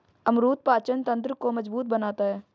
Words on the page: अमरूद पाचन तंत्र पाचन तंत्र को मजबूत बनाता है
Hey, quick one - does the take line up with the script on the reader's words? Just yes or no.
no